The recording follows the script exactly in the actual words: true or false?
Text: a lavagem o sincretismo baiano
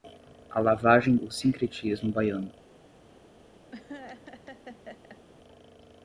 true